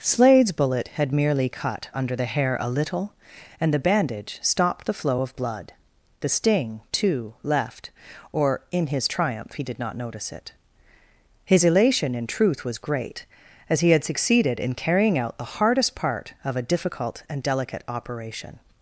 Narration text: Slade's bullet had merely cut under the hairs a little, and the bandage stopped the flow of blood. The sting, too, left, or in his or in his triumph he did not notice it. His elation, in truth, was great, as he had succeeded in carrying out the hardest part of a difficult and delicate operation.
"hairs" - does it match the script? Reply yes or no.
no